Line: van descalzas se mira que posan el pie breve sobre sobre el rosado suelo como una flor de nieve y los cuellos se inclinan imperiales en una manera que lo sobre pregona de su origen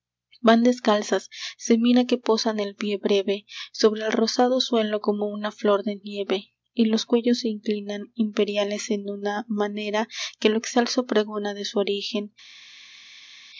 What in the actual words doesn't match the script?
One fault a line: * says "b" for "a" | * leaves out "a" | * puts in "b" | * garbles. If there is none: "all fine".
* leaves out "sobre"
* says "excelso" for "sobre"